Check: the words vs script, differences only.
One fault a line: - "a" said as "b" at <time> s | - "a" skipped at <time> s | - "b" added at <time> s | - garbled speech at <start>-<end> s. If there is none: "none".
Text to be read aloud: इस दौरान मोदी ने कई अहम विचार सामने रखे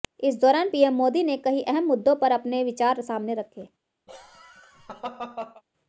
- "पीएम" added at 0.7 s
- "मुद्दों पर अपने" added at 1.8 s